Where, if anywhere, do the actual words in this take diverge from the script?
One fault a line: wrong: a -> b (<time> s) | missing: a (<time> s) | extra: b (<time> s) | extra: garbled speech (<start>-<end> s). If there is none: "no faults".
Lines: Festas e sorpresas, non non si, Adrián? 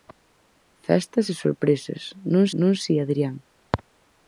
no faults